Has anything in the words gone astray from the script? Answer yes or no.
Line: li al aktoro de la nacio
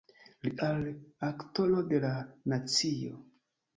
no